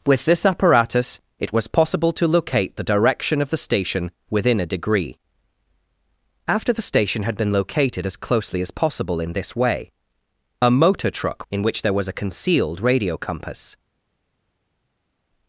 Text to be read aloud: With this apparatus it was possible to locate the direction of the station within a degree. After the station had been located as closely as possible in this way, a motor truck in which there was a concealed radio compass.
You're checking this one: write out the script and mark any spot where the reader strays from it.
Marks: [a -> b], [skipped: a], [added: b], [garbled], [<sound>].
With this apparatus it was possible to locate the direction of the station within a degree. After the station had been located as closely as possible in this way, a motor truck in which there was a concealed radio compass.